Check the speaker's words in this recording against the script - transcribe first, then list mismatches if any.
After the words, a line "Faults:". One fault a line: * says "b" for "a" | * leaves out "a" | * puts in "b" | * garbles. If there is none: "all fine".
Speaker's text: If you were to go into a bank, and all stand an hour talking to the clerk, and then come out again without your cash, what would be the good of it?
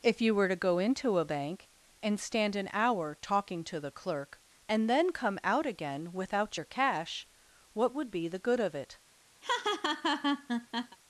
If you were to go into a bank, and stand an hour talking to the clerk, and then come out again without your cash, what would be the good of it?
Faults:
* leaves out "all"